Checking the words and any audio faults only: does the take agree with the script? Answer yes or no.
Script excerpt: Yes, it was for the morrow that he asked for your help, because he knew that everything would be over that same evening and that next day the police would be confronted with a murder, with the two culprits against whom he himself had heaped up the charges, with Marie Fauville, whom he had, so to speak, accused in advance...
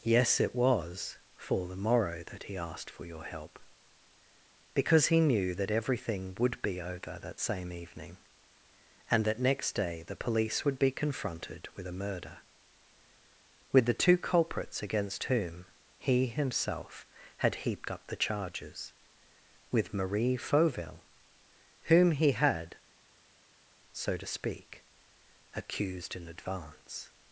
yes